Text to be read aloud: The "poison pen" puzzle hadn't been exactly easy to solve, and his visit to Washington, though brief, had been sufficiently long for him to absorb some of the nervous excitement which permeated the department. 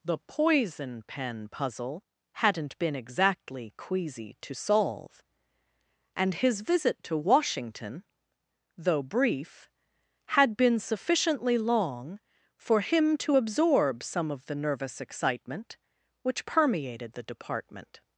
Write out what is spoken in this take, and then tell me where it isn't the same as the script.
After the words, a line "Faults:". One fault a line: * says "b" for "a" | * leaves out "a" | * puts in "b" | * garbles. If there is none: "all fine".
The "poison pen" puzzle hadn't been exactly queasy to solve, and his visit to Washington, though brief, had been sufficiently long for him to absorb some of the nervous excitement which permeated the department.
Faults:
* says "queasy" for "easy"